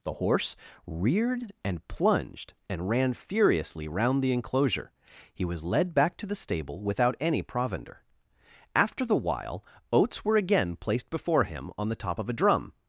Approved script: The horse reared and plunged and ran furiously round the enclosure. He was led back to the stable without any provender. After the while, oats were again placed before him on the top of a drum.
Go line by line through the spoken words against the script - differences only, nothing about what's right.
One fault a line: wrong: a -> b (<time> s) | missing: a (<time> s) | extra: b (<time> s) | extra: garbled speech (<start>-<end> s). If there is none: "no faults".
no faults